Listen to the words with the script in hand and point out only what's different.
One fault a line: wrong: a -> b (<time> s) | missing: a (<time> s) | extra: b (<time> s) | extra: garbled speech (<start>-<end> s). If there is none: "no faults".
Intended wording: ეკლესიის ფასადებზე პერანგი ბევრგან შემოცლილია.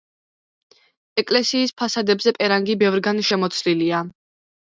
no faults